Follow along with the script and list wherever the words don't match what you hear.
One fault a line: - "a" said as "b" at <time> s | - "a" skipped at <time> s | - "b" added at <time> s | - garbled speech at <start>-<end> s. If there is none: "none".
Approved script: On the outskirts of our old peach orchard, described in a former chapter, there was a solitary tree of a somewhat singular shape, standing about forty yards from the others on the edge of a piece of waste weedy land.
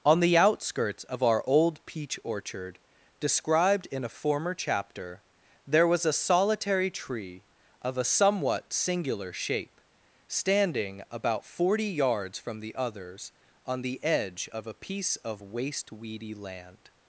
none